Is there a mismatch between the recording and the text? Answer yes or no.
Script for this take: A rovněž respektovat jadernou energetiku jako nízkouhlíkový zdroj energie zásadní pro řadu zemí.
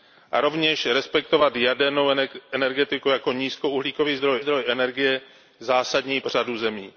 yes